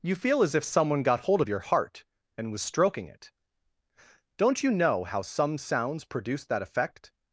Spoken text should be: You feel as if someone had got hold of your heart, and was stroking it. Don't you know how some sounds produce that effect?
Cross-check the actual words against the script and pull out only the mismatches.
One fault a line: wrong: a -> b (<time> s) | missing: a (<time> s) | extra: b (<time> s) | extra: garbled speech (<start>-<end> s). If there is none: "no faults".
missing: had (1.0 s)